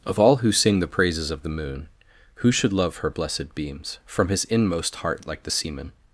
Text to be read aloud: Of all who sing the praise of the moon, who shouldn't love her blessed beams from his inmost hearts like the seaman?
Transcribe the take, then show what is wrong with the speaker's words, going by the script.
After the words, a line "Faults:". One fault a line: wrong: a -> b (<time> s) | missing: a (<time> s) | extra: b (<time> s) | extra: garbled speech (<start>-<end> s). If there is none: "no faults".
Of all who sing the praises of the moon, who should love her blessed beams from his inmost heart like the seaman?
Faults:
wrong: praise -> praises (0.9 s)
wrong: shouldn't -> should (2.5 s)
wrong: hearts -> heart (5.0 s)